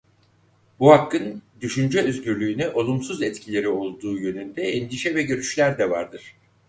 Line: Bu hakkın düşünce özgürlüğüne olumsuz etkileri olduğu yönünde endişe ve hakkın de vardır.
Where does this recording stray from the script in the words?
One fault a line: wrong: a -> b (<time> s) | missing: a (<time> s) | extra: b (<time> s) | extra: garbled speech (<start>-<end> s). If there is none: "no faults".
wrong: hakkın -> görüşler (5.2 s)